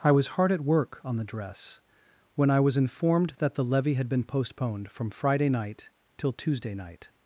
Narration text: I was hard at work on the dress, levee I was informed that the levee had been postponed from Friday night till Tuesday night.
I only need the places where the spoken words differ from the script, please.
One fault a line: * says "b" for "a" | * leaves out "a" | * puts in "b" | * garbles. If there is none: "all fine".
* says "when" for "levee"